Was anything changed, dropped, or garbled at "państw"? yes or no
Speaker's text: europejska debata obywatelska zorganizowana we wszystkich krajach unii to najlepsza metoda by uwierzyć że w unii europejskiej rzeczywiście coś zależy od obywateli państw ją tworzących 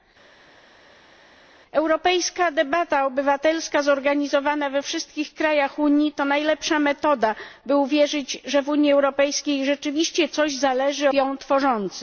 yes